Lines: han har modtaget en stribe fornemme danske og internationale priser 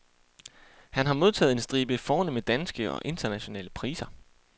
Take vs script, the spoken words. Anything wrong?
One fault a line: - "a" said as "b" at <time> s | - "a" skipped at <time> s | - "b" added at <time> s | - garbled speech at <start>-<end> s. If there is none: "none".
none